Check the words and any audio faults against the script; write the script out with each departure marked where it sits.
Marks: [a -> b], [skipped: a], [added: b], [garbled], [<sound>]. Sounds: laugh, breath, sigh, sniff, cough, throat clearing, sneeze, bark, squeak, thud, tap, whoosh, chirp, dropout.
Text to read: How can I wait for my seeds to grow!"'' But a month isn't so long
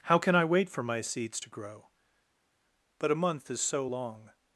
How can I wait for my seeds to grow!"'' But a month [isn't -> is] so long